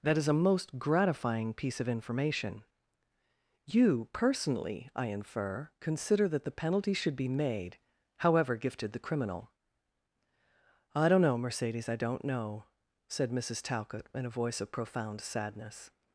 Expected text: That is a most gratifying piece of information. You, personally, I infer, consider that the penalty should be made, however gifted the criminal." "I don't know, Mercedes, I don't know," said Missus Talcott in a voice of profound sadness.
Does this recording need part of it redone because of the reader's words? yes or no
no